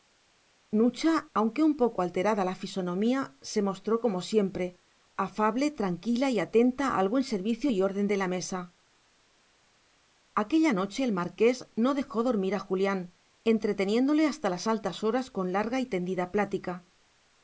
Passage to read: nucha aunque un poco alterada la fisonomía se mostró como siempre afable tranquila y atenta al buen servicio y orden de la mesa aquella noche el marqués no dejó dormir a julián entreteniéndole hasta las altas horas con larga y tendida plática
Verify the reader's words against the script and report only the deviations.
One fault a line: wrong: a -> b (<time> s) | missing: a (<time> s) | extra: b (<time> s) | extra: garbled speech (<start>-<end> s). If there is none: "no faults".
no faults